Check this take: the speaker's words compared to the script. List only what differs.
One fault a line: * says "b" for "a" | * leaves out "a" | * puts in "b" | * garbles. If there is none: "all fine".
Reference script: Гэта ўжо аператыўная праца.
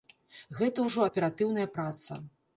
all fine